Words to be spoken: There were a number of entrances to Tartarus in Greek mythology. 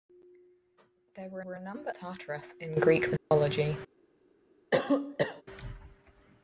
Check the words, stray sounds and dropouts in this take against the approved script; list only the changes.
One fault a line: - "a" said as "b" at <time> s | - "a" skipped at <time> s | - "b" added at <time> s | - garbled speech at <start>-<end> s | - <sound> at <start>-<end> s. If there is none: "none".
- "were" added at 1.4 s
- "of entrances to" skipped at 1.9 s
- dropout at 3.2-3.3 s
- cough at 4.7-5.4 s